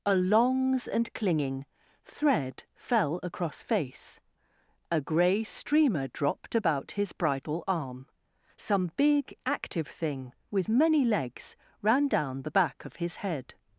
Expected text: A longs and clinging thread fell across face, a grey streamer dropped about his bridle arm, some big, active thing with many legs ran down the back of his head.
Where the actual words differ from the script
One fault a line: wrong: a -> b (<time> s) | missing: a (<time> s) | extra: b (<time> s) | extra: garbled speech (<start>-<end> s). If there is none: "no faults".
no faults